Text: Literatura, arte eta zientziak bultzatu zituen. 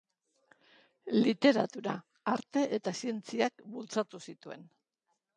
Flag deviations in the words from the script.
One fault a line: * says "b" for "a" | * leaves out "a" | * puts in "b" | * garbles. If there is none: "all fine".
all fine